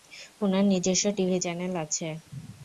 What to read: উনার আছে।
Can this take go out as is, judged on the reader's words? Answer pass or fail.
fail